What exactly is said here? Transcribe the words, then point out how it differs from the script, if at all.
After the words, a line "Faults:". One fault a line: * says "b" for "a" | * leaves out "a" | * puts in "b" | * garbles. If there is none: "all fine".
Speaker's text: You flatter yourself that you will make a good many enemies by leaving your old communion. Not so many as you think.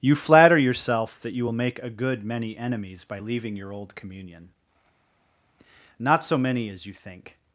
You flatter yourself that you will make a good many enemies by leaving your old communion. Not so many as you think.
Faults:
all fine